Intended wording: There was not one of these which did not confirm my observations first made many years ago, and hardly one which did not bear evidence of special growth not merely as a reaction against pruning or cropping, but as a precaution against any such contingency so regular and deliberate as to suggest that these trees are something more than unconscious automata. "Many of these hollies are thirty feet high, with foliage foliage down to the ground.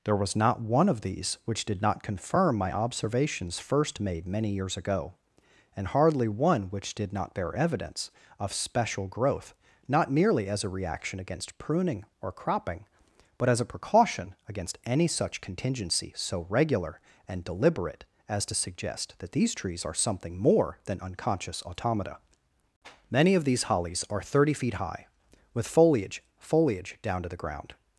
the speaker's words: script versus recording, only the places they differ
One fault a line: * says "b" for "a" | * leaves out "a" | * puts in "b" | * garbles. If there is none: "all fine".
all fine